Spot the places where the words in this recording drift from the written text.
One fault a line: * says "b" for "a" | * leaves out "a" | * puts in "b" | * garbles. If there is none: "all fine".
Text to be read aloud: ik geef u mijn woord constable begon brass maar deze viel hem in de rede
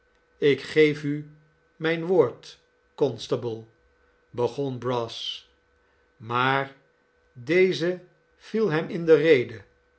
all fine